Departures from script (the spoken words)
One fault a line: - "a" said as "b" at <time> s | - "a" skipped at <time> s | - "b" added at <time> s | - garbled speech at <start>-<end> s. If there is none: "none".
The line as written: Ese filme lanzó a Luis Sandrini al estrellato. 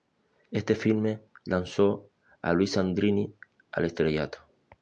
- "Ese" said as "Este" at 0.5 s